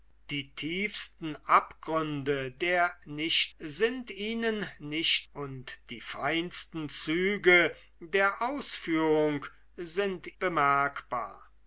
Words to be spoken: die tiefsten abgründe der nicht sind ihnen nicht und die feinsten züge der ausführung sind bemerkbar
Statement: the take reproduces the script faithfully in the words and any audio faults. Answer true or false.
true